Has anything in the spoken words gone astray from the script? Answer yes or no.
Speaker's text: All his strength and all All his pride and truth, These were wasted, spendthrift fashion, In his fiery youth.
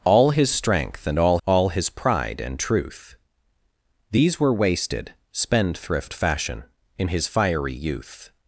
no